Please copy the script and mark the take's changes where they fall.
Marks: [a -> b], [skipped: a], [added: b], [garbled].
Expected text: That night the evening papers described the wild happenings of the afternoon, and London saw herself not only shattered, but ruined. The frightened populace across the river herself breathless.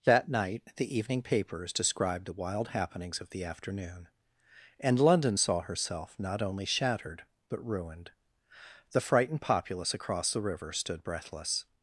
That night the evening papers described the wild happenings of the afternoon, and London saw herself not only shattered, but ruined. The frightened populace across the river [herself -> stood] breathless.